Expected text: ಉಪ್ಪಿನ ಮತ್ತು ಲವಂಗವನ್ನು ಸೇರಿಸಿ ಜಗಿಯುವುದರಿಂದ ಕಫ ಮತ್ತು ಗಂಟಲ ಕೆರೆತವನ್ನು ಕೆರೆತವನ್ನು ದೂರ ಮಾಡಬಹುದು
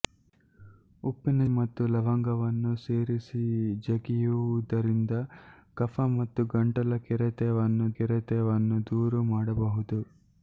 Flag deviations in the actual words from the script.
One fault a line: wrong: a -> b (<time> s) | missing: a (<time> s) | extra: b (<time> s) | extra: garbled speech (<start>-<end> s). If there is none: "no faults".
no faults